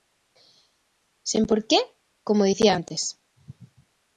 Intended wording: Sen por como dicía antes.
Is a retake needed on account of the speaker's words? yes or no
yes